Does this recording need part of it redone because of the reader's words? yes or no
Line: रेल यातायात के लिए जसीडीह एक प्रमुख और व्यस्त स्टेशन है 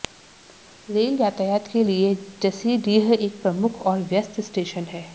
no